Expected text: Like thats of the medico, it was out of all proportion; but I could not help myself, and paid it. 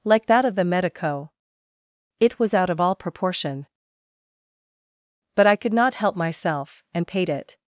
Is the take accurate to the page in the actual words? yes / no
no